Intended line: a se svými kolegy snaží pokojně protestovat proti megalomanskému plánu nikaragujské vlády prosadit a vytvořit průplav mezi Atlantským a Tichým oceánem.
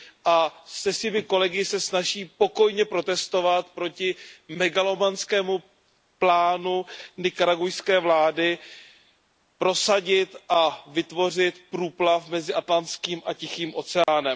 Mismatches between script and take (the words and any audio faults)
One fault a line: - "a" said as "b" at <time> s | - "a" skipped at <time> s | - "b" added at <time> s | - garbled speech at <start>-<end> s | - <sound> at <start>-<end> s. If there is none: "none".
- "se" added at 1.6 s
- dropout at 14.0-14.1 s